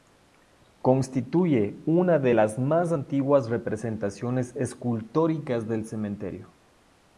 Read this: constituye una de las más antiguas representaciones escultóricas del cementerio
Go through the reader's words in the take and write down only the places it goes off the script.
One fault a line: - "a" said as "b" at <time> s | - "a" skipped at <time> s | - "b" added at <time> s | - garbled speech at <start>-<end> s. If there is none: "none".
none